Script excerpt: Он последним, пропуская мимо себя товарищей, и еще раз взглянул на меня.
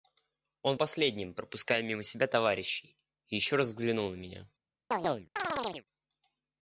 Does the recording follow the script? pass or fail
pass